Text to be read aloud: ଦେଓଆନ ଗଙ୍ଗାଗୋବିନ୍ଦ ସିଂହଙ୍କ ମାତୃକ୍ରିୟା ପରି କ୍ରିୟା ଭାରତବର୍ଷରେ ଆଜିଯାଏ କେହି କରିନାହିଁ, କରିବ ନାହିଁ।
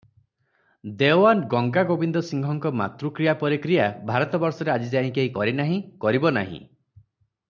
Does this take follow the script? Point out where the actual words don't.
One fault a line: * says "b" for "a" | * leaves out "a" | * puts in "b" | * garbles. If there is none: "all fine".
all fine